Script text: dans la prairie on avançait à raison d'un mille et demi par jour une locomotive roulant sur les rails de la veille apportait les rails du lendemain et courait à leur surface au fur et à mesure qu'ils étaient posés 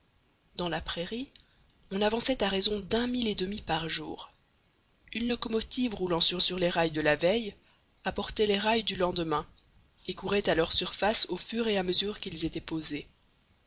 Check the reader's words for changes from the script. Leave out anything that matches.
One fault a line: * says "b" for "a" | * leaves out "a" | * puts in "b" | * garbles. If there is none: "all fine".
* puts in "sur"